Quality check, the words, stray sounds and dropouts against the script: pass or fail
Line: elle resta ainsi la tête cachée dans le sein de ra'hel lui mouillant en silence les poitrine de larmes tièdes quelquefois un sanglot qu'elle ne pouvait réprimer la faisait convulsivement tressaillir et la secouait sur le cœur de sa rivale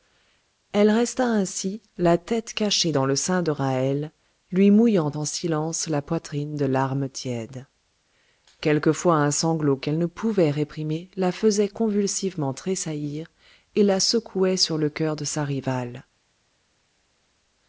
fail